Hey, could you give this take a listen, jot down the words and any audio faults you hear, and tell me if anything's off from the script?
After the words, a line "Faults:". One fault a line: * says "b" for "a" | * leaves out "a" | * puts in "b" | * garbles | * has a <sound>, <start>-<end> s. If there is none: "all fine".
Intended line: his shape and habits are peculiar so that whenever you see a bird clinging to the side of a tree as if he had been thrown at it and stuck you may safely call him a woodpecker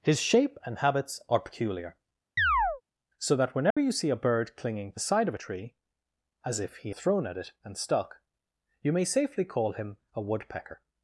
his shape and habits are peculiar so that whenever you see a bird clinging the side of a tree as if he thrown at it and stuck you may safely call him a woodpecker
Faults:
* has a chirp, 2.4-2.8 s
* has a dropout, 3.7-3.8 s
* leaves out "to"
* leaves out "had been"